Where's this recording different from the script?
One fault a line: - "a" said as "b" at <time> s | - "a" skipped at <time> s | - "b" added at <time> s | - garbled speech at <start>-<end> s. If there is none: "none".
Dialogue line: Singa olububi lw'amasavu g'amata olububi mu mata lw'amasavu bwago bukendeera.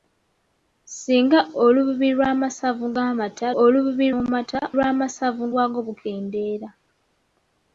none